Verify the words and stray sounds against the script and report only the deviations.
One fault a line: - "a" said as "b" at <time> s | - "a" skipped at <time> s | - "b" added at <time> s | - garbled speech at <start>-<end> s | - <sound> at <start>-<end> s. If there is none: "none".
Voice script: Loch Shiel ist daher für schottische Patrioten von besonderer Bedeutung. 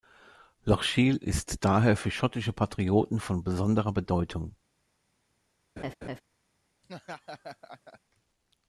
- laugh at 5.8-6.2 s
- laugh at 6.8-8.0 s